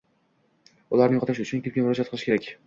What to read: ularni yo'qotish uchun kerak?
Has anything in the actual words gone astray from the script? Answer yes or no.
yes